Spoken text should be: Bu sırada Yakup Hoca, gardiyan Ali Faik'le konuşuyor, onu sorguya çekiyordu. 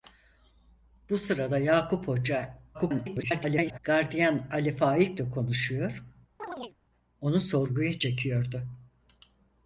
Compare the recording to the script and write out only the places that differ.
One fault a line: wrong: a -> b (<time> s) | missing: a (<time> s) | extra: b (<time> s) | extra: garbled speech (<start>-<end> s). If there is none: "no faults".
extra: garbled speech (2.7-3.8 s)